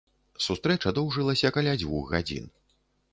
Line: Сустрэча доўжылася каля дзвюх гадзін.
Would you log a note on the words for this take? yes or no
no